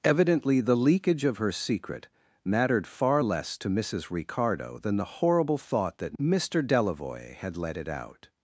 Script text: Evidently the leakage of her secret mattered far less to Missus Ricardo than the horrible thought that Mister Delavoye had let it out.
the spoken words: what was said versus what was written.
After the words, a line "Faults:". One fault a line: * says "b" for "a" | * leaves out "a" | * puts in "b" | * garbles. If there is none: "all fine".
Evidently the leakage of her secret mattered far less to Missus Ricardo than the horrible thought that Mister Delavoye had let it out.
Faults:
all fine